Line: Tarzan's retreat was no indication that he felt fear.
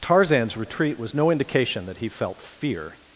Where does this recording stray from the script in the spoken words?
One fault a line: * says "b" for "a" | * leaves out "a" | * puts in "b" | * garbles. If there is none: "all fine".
all fine